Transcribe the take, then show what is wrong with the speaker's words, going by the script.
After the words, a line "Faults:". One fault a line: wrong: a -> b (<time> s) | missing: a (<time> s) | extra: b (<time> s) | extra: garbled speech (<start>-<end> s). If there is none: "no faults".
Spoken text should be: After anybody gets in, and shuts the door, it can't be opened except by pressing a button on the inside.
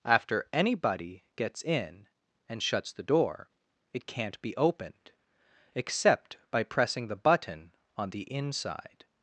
After anybody gets in, and shuts the door, it can't be opened except by pressing the button on the inside.
Faults:
wrong: a -> the (7.1 s)